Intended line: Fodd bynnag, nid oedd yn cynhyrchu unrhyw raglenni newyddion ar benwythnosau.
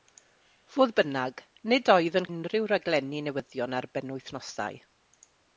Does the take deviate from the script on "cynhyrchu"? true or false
true